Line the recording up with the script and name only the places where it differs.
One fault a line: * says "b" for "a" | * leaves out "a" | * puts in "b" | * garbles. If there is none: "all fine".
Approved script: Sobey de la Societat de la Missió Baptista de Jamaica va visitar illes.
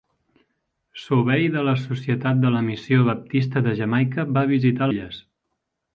all fine